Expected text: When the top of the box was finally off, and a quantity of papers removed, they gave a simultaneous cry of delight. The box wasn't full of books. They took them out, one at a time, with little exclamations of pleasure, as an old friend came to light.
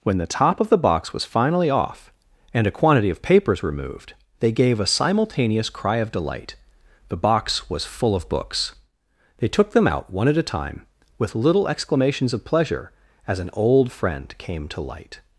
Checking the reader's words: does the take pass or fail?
fail